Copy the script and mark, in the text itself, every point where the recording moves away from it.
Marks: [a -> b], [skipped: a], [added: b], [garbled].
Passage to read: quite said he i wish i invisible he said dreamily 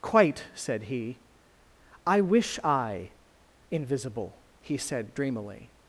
quite said he i wish i invisible he said dreamily